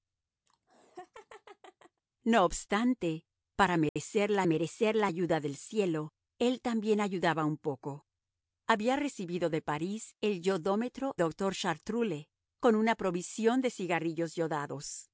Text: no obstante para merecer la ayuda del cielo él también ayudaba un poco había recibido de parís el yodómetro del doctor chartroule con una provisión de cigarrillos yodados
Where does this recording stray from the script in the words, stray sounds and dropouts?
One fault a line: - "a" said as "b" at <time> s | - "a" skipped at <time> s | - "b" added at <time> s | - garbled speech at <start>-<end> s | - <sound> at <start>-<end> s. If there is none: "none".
- laugh at 0.5-2.0 s
- dropout at 3.9-4.0 s
- "merecer la" added at 4.4 s
- "del" skipped at 11.2 s